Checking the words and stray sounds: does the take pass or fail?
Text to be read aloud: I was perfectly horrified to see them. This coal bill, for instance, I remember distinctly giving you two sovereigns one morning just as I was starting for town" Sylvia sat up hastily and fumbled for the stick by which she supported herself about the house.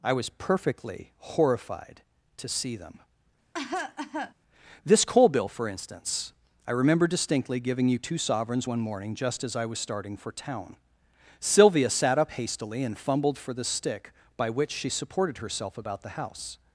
fail